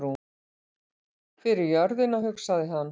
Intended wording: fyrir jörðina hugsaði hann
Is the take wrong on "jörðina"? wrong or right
right